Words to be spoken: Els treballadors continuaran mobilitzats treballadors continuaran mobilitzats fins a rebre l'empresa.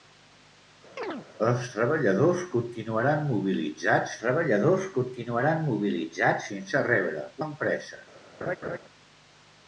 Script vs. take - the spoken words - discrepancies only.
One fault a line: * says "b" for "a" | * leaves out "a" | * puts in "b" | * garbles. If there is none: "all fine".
all fine